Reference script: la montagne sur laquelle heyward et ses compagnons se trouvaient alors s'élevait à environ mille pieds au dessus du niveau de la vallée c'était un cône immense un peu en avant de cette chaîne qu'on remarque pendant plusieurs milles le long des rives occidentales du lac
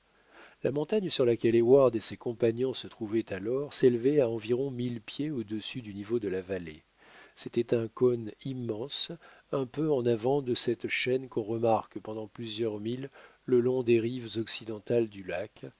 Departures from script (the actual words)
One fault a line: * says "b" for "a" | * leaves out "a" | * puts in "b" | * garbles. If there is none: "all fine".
all fine